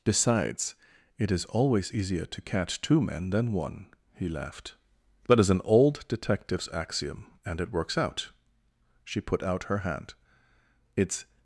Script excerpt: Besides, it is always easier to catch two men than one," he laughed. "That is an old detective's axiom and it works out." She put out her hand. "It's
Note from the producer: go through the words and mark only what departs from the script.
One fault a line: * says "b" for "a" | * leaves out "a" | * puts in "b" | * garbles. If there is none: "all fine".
all fine